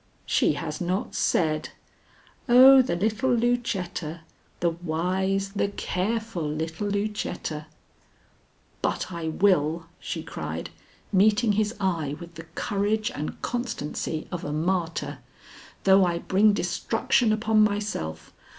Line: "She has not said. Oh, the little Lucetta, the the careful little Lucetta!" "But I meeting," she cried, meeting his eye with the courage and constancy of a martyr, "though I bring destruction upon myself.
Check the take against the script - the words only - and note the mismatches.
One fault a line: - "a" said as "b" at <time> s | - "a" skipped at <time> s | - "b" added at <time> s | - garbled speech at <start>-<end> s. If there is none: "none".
- "wise" added at 4.7 s
- "meeting" said as "will" at 9.3 s